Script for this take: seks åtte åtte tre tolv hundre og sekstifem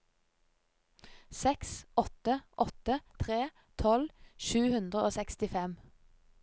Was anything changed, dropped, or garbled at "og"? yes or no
no